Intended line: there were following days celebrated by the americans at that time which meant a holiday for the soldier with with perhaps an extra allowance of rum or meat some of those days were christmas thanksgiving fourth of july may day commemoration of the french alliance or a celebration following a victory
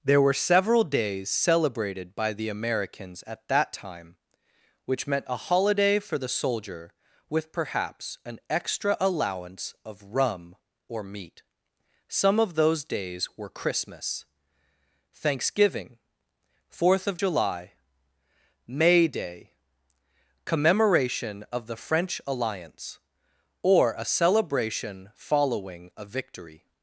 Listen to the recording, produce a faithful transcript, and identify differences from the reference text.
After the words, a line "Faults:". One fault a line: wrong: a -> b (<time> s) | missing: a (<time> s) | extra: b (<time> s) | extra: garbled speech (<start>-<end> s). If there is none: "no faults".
there were several days celebrated by the americans at that time which meant a holiday for the soldier with perhaps an extra allowance of rum or meat some of those days were christmas thanksgiving fourth of july may day commemoration of the french alliance or a celebration following a victory
Faults:
wrong: following -> several (0.3 s)
missing: with (7.5 s)